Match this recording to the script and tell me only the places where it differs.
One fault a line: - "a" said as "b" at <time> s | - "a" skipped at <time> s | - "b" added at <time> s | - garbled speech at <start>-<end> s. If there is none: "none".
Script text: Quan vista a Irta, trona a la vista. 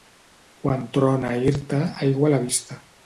- "vista" said as "trona" at 1.0 s
- "trona" said as "aigua" at 2.1 s